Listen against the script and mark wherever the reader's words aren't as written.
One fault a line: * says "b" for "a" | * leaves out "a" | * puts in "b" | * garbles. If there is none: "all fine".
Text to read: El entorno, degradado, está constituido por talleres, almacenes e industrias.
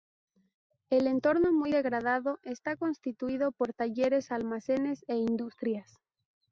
* puts in "muy"